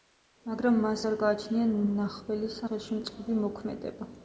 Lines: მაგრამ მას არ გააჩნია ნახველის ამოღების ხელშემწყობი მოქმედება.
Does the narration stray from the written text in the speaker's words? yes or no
yes